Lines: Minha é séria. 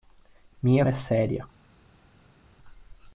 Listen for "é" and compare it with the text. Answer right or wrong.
right